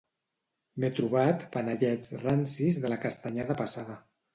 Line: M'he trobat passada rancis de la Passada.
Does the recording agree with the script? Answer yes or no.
no